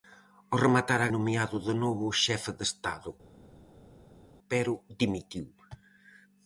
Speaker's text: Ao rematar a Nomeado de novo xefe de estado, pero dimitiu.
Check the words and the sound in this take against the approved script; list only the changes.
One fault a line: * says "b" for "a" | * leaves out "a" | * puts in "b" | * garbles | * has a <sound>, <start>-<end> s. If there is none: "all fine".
all fine